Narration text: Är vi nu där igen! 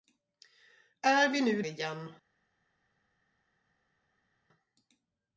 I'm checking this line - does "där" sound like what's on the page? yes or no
no